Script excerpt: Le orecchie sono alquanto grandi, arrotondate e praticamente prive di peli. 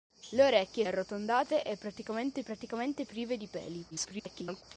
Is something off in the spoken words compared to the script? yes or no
yes